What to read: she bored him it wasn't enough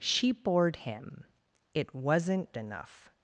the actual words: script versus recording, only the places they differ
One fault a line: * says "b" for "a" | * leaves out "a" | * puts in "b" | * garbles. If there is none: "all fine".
all fine